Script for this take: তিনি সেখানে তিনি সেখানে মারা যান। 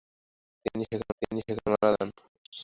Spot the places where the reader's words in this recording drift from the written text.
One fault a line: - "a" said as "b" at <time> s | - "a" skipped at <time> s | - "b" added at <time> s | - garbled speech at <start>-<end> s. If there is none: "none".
none